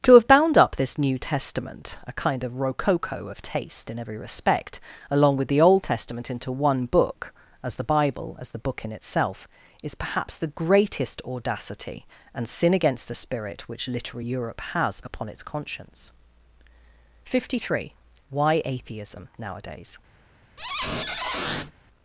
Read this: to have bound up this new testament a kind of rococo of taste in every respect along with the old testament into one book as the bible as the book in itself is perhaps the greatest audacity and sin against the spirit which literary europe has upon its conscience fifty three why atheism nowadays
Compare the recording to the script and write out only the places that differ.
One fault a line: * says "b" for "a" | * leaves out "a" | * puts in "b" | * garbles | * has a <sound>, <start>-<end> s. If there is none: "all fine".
* has a squeak, 20.6-21.7 s